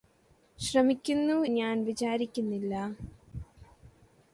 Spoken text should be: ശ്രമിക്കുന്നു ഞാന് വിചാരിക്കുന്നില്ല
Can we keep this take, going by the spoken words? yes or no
yes